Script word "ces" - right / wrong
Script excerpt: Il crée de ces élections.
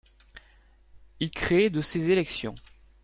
right